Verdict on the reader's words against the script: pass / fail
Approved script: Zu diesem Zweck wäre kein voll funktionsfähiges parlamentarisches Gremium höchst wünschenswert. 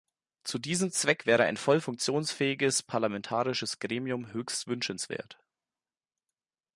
fail